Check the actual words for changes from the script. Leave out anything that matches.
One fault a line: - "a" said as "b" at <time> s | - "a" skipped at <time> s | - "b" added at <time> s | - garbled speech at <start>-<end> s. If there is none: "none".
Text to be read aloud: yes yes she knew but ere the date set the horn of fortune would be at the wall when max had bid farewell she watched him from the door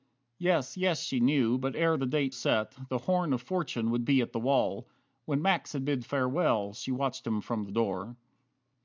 none